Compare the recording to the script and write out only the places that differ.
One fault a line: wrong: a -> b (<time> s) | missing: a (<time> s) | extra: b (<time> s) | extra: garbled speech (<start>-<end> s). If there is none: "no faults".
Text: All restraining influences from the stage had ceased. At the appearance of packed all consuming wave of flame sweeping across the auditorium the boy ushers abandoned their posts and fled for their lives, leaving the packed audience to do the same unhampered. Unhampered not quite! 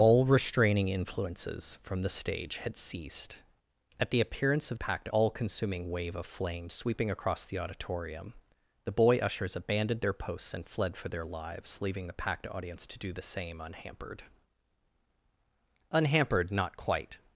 no faults